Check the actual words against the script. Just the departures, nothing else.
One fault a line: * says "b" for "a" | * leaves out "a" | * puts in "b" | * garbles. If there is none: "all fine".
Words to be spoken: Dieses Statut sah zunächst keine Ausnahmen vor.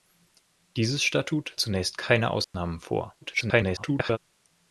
* leaves out "sah"
* garbles